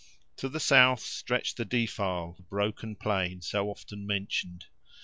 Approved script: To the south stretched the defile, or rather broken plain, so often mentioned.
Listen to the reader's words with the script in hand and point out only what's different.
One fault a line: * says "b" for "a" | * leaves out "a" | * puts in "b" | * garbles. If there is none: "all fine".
* leaves out "or rather"